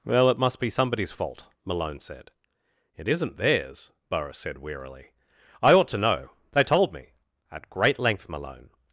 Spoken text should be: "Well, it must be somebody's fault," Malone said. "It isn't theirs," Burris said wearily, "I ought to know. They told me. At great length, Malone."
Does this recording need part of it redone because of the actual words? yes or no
no